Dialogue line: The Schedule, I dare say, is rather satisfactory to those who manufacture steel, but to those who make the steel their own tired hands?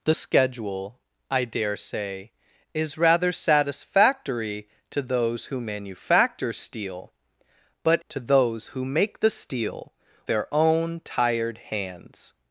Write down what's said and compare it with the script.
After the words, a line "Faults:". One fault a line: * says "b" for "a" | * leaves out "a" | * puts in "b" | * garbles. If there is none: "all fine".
The Schedule, I dare say, is rather satisfactory to those who manufacture steel, but to those who make the steel their own tired hands?
Faults:
all fine